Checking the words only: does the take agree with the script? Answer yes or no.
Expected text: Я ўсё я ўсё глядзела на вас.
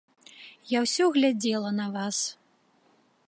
no